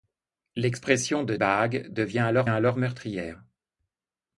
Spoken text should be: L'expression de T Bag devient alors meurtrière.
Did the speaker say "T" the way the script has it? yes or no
no